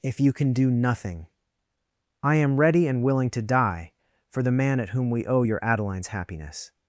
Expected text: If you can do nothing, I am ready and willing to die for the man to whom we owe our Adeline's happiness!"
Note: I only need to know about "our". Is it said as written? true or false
false